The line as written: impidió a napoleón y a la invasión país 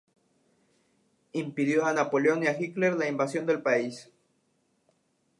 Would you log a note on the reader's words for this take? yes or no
yes